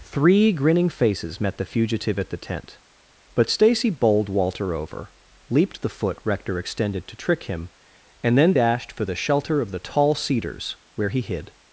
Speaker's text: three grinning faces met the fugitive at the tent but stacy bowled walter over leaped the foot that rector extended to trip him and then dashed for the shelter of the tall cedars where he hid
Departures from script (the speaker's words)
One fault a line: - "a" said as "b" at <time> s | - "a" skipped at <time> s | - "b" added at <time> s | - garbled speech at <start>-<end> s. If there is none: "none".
- "that" skipped at 6.2 s
- "trip" said as "trick" at 7.2 s